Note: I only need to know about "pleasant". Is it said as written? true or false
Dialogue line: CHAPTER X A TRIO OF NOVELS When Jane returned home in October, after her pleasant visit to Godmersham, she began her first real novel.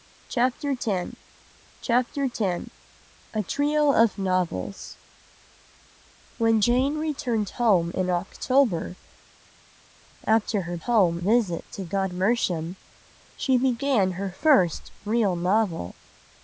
false